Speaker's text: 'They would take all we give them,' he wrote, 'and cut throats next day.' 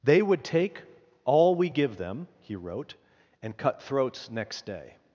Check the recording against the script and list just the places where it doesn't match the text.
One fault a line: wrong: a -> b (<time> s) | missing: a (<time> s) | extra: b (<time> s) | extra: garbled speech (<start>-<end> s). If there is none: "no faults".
no faults